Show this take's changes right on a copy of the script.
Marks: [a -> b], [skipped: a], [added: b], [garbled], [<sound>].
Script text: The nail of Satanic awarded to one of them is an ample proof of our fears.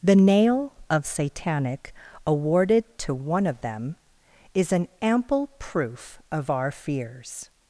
The nail of Satanic awarded to one of them is an ample proof of our fears.